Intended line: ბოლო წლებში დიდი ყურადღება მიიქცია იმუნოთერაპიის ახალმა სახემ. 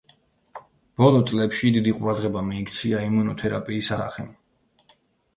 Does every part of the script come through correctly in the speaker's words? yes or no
no